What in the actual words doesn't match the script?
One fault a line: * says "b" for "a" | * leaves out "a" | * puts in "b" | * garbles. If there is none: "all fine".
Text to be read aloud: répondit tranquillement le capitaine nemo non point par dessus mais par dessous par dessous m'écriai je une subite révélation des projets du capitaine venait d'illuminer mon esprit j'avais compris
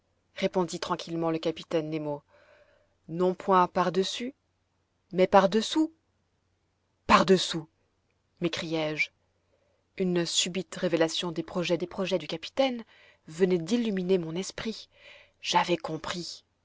* puts in "des projets"